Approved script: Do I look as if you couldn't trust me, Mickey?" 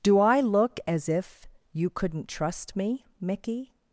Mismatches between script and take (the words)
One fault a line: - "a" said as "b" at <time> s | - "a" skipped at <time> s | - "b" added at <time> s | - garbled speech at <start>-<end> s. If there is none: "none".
none